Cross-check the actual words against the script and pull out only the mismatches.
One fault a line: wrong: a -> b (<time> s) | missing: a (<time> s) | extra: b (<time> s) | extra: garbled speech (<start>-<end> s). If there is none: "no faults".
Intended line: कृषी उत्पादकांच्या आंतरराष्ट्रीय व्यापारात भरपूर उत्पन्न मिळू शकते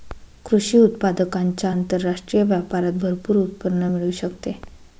no faults